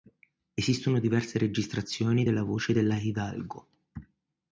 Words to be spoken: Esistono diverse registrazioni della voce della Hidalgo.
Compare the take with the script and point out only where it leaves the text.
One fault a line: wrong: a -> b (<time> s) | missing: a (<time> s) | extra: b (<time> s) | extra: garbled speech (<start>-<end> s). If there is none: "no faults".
no faults